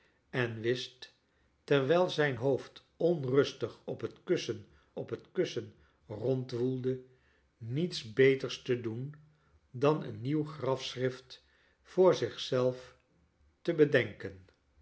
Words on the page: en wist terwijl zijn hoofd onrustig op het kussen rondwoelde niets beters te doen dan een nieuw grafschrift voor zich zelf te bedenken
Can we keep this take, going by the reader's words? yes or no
no